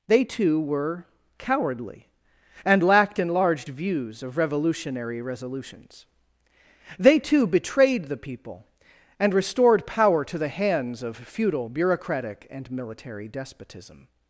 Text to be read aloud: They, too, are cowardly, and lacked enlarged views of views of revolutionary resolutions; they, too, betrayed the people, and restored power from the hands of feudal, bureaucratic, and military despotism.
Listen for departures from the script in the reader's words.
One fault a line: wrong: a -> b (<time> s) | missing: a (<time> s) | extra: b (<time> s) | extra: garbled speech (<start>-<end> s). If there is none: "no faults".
wrong: are -> were (0.6 s)
missing: views of (4.4 s)
wrong: from -> to (10.2 s)